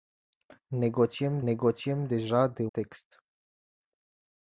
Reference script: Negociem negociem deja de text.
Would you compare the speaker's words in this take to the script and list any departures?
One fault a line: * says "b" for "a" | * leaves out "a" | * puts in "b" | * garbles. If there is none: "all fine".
all fine